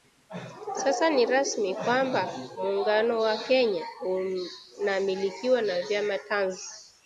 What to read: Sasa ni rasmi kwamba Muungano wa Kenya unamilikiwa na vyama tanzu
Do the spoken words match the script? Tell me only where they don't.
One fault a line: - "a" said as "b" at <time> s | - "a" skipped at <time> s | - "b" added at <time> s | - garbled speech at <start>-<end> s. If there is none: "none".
none